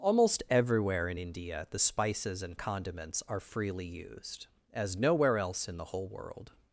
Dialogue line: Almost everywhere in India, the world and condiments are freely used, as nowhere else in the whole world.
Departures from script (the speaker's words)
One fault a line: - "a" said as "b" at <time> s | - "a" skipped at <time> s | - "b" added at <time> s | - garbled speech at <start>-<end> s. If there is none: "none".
- "world" said as "spices" at 1.8 s